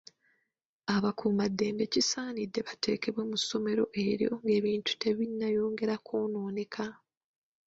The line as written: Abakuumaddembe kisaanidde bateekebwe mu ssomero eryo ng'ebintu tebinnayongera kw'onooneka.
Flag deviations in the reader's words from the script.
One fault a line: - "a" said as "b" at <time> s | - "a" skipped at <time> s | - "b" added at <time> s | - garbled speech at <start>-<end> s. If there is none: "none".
none